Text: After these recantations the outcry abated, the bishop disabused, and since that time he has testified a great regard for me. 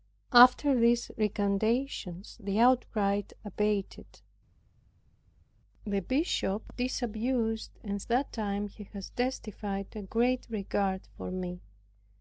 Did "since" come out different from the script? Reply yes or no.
yes